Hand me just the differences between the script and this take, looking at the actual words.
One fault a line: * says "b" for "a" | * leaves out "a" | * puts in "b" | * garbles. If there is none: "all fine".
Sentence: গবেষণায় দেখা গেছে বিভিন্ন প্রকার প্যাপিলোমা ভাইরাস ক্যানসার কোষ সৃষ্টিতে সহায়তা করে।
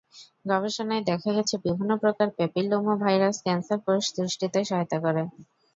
all fine